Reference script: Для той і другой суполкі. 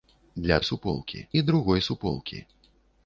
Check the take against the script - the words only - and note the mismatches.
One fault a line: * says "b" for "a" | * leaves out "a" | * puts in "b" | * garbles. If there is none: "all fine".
* says "суполкі" for "той"